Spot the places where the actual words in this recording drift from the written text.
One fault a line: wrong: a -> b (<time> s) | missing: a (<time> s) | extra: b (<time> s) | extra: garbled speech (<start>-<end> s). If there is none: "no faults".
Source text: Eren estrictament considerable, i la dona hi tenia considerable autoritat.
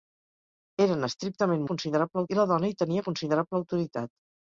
no faults